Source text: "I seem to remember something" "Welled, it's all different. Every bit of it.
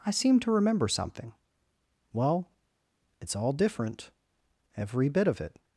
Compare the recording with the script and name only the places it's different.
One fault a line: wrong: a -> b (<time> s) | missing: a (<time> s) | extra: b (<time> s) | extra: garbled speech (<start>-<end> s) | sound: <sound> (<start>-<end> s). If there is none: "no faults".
wrong: Welled -> Well (2.1 s)